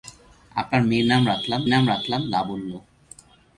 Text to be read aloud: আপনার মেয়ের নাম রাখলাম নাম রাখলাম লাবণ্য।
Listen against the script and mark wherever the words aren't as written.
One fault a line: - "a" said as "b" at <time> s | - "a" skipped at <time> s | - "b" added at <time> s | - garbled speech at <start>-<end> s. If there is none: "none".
none